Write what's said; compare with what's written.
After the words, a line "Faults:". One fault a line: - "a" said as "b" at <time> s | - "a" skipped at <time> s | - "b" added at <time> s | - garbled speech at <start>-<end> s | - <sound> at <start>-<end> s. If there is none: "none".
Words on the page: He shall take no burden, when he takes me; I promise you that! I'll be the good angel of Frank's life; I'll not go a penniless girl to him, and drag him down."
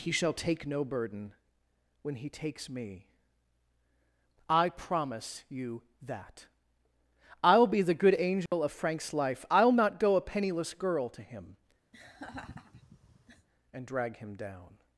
He shall take no burden, when he takes me; I promise you that! I'll be the good angel of Frank's life; I'll not go a penniless girl to him, and drag him down."
Faults:
- dropout at 8.5-8.5 s
- laugh at 11.9-13.5 s